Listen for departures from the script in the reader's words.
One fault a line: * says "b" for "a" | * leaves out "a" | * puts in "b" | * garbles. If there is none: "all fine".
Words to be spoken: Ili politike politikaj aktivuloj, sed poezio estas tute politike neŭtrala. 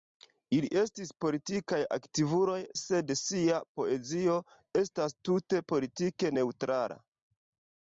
* says "estis" for "politike"
* puts in "sia"